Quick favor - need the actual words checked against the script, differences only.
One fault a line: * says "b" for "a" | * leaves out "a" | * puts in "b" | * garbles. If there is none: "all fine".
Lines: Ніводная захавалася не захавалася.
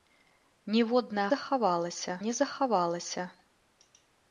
all fine